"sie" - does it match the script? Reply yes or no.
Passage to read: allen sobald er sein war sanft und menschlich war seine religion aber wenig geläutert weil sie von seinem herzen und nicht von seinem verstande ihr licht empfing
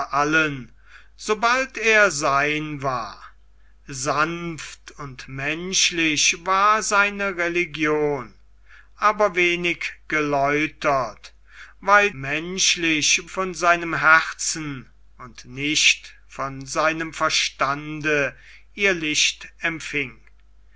no